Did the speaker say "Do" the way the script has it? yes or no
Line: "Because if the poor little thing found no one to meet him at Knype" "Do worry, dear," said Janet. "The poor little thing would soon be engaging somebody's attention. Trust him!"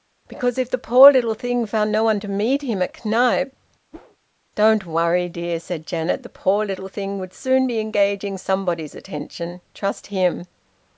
no